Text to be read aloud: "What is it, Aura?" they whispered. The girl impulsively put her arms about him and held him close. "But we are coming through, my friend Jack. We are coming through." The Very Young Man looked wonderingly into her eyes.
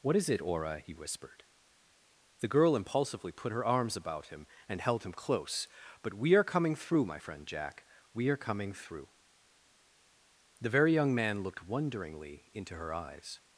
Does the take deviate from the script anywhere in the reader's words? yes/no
yes